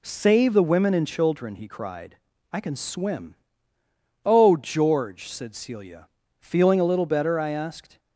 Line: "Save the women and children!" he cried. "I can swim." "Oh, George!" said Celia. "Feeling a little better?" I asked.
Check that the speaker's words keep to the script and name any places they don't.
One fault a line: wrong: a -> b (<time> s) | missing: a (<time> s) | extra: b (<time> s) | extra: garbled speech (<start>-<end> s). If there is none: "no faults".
no faults